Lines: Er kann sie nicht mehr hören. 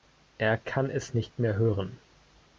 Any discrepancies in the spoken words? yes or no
yes